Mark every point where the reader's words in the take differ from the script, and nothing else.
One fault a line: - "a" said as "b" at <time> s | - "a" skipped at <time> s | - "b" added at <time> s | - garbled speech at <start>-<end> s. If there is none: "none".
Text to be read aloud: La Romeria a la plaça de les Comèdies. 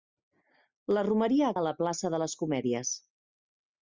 none